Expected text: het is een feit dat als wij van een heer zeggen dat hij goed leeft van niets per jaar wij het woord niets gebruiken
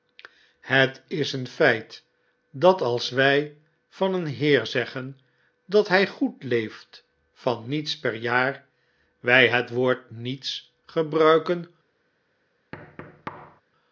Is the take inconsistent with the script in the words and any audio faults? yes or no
yes